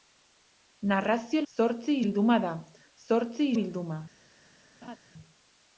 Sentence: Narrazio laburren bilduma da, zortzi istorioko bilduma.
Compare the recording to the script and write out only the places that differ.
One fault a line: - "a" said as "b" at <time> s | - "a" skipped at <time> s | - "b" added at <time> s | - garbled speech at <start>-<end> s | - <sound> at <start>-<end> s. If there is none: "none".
- "laburren" said as "zortzi" at 1.5 s
- "istorioko" skipped at 3.5 s
- laugh at 4.8-5.0 s